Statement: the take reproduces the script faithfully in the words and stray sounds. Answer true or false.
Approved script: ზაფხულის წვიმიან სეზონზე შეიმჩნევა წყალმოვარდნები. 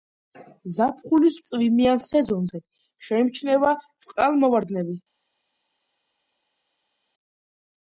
true